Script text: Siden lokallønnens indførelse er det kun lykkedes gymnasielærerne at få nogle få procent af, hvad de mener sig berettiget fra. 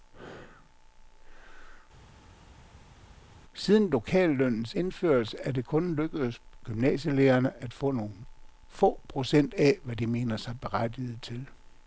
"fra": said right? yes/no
no